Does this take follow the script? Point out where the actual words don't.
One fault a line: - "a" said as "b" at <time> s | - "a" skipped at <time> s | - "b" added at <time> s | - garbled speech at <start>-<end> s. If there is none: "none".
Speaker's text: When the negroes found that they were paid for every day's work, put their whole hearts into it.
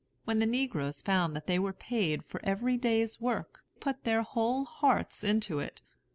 none